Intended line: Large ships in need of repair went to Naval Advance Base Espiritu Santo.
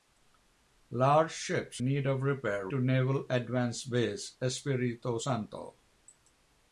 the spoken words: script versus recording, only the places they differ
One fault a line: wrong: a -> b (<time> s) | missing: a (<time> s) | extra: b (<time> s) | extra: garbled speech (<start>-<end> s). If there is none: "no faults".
missing: in (1.8 s)
missing: went (2.7 s)